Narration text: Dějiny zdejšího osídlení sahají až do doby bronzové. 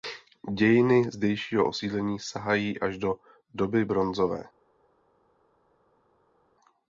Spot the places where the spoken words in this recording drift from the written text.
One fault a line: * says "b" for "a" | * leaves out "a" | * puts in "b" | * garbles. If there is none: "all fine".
all fine